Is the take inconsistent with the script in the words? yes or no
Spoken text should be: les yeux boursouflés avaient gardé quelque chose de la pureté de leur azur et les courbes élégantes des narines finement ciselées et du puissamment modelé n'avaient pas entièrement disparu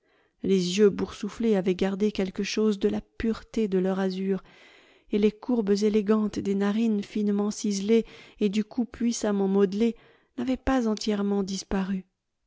yes